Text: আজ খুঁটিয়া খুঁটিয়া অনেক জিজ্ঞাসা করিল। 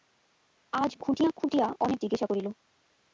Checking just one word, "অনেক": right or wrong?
right